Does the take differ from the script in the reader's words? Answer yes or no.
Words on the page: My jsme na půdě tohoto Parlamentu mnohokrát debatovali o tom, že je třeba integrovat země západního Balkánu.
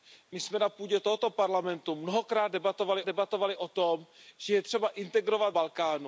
yes